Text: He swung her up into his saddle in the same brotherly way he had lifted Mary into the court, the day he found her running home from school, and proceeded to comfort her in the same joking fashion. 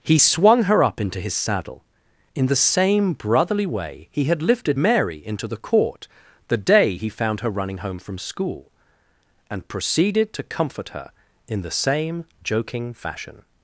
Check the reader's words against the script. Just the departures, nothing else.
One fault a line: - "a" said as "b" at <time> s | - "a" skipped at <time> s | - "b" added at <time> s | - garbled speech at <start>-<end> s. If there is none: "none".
none